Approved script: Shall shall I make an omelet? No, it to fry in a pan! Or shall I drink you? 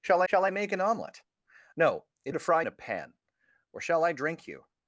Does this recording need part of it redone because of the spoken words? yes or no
no